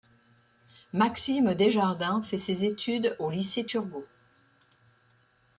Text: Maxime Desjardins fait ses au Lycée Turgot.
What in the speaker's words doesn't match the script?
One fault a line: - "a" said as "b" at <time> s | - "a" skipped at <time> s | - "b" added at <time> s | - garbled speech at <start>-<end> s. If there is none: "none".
- "études" added at 2.6 s